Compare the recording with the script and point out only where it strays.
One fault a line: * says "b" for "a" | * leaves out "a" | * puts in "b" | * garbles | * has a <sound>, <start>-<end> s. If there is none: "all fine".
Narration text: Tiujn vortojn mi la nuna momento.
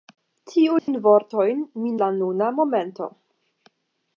* has a dropout, 0.8-0.9 s